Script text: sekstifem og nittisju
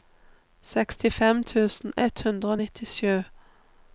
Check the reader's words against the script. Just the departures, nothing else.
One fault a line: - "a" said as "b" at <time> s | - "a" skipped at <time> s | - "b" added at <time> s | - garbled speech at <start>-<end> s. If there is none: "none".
- "tusen ett hundre" added at 1.5 s